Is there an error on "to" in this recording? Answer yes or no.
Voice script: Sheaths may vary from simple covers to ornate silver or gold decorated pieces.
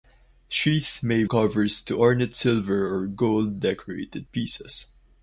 no